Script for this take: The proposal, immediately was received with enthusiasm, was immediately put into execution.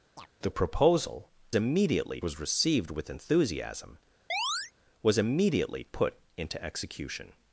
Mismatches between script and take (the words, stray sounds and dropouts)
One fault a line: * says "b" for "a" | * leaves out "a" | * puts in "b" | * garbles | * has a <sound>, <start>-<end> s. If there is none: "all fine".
* has a chirp, 0.2-0.3 s
* has a chirp, 4.3-4.7 s